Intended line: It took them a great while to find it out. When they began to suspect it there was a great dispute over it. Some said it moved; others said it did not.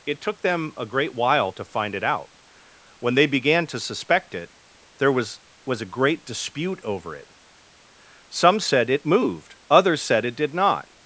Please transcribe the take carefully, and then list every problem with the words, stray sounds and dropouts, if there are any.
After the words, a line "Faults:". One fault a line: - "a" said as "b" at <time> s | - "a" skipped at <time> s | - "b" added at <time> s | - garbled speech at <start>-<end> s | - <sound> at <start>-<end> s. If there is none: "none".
It took them a great while to find it out. When they began to suspect it there was was a great dispute over it. Some said it moved; others said it did not.
Faults:
- "was" added at 5.7 s